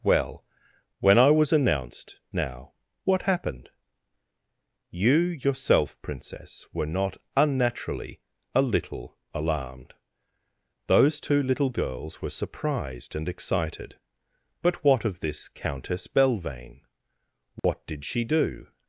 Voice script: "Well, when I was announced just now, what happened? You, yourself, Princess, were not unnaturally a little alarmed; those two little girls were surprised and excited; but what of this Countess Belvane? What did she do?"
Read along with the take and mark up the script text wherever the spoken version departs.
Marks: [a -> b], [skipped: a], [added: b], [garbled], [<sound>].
"Well, when I was announced [skipped: just] now, what happened? You, yourself, Princess, were not unnaturally a little alarmed; those two little girls were surprised and excited; but what of this Countess Belvane? What [dropout] did she do?"